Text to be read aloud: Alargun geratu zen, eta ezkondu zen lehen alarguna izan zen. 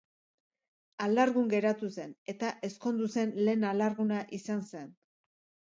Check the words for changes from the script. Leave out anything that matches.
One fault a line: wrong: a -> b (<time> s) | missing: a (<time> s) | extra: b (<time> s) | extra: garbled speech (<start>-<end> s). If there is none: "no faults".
no faults